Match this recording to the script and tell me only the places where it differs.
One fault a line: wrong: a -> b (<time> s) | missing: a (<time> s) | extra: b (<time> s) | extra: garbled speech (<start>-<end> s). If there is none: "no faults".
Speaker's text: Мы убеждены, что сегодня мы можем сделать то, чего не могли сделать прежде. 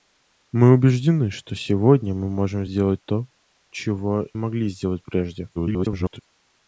missing: не (4.3 s)
extra: garbled speech (5.6-6.2 s)